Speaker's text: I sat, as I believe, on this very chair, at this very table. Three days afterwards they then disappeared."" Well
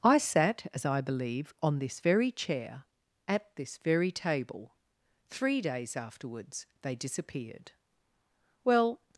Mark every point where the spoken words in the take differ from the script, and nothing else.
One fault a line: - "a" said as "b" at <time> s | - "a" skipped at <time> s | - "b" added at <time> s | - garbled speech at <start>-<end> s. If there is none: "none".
- "then" skipped at 6.9 s